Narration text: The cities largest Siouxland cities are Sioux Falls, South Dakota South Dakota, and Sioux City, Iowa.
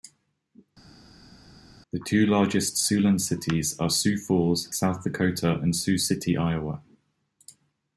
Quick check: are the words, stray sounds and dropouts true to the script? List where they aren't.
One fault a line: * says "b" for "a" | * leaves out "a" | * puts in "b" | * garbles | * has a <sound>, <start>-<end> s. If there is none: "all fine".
* says "two" for "cities"
* leaves out "South Dakota"